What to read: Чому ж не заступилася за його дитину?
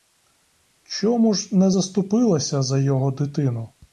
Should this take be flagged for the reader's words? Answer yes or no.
no